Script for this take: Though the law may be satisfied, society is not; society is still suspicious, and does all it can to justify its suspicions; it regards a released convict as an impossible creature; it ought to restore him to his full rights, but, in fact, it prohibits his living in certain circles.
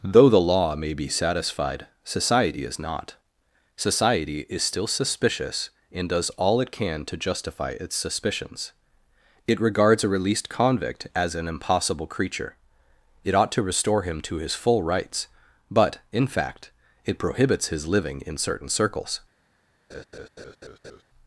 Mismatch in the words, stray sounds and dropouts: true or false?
true